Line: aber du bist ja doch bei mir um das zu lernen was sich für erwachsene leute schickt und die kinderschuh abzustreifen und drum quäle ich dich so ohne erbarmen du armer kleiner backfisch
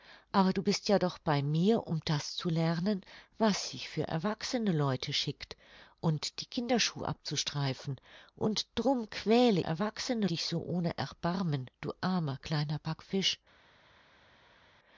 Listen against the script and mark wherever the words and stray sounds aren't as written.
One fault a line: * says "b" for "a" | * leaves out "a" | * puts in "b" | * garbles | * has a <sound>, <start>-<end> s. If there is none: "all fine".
* says "erwachsene" for "ich"